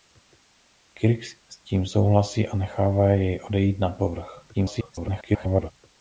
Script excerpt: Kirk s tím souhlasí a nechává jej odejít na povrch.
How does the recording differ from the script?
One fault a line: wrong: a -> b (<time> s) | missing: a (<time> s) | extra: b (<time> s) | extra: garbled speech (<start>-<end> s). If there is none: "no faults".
extra: garbled speech (4.5-5.7 s)